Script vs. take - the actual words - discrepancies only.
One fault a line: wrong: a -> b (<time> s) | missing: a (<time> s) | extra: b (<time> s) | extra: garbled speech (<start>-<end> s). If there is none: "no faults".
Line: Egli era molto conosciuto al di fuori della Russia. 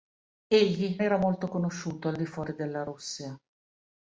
no faults